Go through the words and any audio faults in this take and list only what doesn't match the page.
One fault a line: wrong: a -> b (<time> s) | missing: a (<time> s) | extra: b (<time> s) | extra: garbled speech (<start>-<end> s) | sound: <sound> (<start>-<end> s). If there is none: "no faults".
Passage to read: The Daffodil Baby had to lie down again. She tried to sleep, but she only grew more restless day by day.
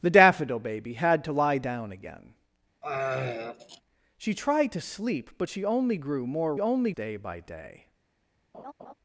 sound: throat clearing (2.8-3.8 s)
wrong: restless -> only (6.6 s)
sound: laugh (8.5-8.9 s)